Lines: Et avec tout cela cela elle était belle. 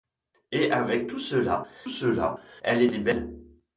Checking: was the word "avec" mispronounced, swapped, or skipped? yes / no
no